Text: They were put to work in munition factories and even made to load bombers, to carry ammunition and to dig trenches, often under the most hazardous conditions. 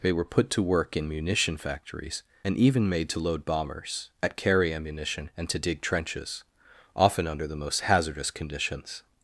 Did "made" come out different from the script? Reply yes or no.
no